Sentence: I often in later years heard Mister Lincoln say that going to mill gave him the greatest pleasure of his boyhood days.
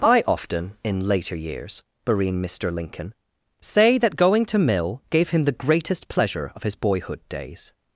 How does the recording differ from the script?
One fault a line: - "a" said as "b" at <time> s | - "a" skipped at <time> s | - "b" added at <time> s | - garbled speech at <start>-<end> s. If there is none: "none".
- "heard" said as "barine" at 2.1 s